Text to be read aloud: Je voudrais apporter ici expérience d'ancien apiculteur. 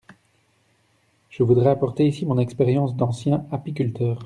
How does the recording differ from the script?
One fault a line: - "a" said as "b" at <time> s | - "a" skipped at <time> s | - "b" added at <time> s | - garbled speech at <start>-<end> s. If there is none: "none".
- "mon" added at 2.2 s